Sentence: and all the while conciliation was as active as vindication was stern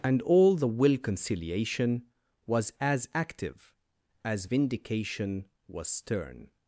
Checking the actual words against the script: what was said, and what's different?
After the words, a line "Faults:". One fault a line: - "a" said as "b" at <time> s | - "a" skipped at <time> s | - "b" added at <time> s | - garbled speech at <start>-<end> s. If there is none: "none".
and all the will conciliation was as active as vindication was stern
Faults:
- "while" said as "will" at 0.7 s